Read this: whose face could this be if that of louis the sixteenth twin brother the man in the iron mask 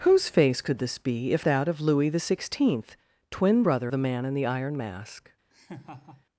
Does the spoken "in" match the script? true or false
true